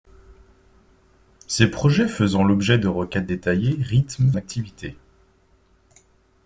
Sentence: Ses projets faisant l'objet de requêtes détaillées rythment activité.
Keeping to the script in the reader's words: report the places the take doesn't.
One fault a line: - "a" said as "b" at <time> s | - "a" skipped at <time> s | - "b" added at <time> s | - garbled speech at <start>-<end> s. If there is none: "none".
none